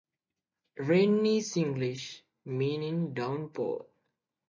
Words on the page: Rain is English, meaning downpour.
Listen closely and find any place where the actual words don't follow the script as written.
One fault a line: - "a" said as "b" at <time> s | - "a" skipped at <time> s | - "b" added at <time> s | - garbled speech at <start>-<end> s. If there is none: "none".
none